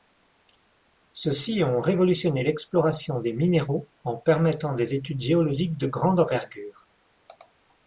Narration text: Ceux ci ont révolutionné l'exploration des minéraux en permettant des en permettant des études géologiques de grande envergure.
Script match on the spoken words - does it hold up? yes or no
no